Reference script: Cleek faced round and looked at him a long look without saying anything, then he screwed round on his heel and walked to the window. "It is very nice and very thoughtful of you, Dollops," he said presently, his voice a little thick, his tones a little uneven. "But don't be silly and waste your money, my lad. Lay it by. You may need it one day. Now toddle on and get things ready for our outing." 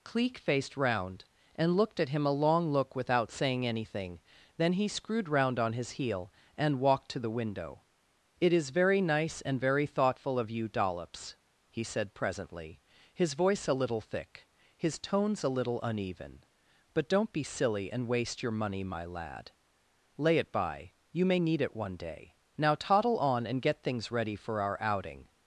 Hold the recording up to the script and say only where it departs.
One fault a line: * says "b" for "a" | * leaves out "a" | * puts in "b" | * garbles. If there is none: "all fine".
all fine